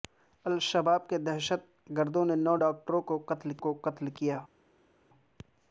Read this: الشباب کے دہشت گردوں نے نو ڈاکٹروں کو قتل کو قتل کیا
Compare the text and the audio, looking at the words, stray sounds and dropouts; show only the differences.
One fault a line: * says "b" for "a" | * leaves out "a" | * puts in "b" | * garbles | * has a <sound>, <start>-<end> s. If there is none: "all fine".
all fine